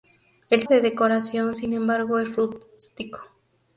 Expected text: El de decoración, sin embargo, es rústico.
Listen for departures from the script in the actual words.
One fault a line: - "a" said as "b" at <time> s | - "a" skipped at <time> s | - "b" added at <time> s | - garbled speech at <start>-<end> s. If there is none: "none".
none